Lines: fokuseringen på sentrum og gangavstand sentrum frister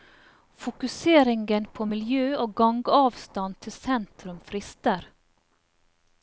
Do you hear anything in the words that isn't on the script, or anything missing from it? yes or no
yes